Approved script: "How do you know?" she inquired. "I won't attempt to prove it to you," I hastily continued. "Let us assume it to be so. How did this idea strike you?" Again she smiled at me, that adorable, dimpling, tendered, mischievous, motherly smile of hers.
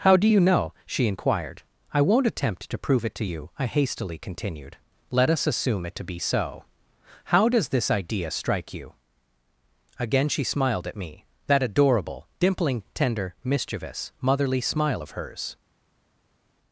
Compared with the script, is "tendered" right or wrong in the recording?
wrong